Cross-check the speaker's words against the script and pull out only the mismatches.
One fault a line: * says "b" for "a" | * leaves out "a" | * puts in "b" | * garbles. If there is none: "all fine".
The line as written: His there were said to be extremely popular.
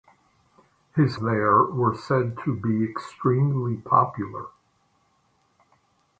all fine